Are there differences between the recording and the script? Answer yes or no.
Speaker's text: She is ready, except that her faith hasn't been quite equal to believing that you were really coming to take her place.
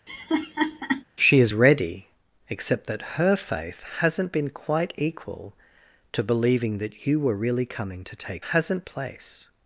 yes